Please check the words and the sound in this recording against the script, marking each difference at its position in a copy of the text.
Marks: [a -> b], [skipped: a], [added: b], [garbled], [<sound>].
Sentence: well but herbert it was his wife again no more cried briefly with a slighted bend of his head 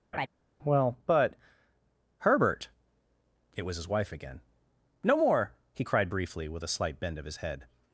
[laugh] well but herbert it was his wife again no more [added: he] cried briefly with a [slighted -> slight] bend of his head